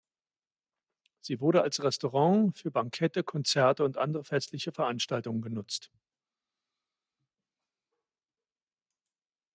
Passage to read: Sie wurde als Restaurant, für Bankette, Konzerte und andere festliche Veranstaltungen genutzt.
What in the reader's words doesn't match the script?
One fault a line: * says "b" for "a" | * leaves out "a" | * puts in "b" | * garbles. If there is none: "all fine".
all fine